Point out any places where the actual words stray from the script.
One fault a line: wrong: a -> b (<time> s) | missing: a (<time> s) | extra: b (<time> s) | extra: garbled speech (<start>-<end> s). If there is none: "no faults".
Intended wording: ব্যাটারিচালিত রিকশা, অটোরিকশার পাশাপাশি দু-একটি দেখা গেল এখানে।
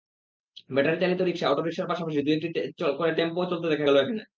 extra: করে টেম্পোও চলতে (3.0 s)